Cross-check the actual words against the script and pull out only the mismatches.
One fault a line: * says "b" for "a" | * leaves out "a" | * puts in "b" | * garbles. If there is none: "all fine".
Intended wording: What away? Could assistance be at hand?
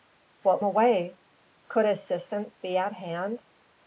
all fine